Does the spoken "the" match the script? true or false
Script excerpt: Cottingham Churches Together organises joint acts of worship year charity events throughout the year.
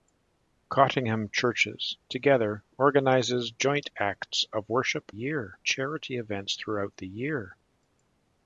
true